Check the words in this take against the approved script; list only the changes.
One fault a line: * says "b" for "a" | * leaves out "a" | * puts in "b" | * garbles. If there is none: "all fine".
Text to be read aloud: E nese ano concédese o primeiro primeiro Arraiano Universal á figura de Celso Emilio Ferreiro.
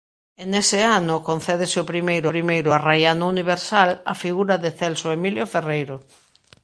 all fine